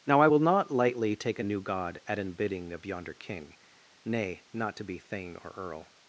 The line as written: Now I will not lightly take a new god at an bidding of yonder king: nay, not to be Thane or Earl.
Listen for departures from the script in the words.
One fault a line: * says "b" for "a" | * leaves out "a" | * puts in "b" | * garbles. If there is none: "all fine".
all fine